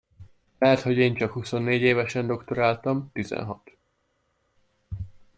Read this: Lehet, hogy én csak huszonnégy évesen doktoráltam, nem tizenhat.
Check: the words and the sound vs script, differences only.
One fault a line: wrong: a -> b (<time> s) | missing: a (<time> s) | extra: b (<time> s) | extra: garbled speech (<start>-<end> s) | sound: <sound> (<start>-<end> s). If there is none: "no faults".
missing: nem (3.1 s)